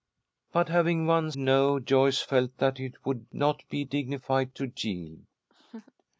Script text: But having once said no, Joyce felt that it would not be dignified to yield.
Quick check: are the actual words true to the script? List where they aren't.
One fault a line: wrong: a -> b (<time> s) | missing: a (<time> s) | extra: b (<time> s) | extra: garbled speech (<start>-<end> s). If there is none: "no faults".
missing: said (1.4 s)